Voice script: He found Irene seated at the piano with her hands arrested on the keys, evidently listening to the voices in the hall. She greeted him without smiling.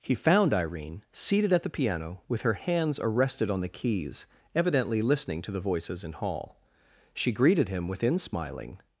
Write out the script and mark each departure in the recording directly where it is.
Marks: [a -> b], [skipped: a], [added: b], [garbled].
He found Irene seated at the piano with her hands arrested on the keys, evidently listening to the voices in [skipped: the] hall. She greeted him [without -> within] smiling.